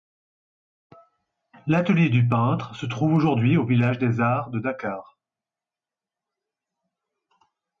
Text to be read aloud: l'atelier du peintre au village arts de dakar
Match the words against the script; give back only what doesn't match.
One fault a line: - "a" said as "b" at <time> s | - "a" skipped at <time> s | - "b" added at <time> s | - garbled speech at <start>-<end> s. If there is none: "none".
- "se trouve aujourd'hui" added at 2.8 s
- "des" added at 4.0 s